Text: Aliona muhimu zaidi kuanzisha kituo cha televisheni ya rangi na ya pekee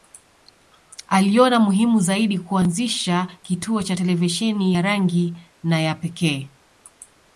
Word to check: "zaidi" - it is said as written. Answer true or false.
true